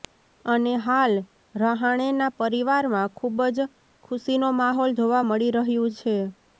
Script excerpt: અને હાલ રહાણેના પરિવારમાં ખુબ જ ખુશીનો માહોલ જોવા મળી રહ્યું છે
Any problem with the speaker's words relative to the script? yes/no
no